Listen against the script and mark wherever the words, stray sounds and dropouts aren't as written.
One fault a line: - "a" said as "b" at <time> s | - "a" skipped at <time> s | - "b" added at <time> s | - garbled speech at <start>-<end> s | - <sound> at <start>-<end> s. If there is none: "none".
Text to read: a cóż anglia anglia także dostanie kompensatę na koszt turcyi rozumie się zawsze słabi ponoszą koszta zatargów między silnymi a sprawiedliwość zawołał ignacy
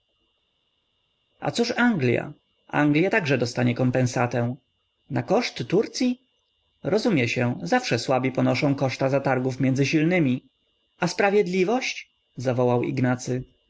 none